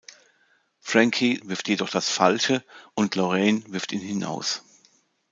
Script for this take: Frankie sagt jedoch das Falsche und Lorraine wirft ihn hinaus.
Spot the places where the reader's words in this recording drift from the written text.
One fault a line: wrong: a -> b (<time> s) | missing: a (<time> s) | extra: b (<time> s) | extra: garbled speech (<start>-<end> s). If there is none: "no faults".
wrong: sagt -> wirft (1.4 s)